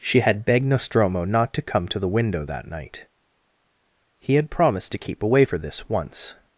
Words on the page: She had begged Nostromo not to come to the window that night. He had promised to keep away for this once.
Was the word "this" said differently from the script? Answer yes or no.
no